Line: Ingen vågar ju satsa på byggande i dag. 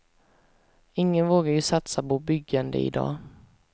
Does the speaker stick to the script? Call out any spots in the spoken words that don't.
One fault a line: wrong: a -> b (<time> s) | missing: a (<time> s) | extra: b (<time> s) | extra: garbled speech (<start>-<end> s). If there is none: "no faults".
no faults